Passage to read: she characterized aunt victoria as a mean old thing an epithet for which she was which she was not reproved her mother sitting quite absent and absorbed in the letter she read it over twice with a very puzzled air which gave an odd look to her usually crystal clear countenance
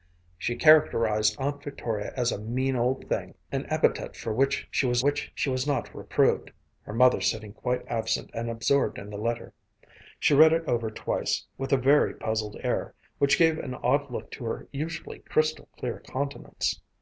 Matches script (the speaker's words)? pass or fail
pass